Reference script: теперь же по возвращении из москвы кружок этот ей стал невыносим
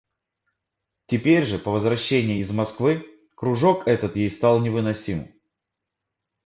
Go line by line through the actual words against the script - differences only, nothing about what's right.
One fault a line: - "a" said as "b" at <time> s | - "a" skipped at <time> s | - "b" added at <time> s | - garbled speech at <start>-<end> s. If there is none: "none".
none